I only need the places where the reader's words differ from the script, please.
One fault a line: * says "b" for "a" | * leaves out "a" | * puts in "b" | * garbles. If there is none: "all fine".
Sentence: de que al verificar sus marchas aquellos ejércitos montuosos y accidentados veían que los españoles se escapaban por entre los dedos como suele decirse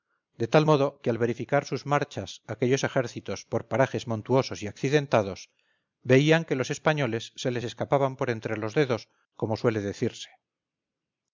* puts in "tal modo"
* puts in "por parajes"
* puts in "les"